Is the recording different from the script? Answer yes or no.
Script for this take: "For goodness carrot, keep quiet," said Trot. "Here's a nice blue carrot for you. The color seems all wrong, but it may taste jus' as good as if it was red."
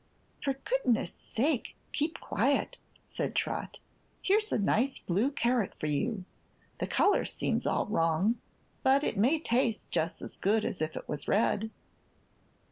yes